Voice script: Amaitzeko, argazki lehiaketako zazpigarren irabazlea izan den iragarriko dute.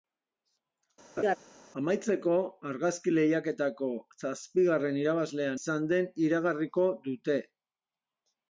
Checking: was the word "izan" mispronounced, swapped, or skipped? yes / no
no